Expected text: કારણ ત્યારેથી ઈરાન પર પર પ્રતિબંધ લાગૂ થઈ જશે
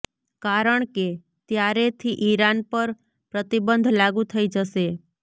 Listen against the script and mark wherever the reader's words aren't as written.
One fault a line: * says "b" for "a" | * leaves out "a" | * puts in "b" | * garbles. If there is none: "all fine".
* puts in "કે"
* leaves out "પર"